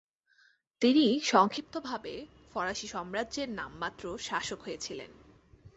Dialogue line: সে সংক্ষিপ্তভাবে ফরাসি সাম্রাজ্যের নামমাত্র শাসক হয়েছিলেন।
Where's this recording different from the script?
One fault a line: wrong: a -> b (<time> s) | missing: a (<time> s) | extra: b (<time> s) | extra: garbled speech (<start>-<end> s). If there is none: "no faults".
wrong: সে -> তিনি (0.8 s)